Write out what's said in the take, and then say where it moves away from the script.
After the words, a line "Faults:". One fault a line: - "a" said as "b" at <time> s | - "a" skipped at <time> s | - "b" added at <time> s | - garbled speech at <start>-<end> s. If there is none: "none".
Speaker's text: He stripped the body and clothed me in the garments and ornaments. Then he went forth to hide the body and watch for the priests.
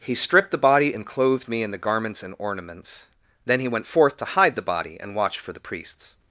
He stripped the body and clothed me in the garments and ornaments. Then he went forth to hide the body and watch for the priests.
Faults:
none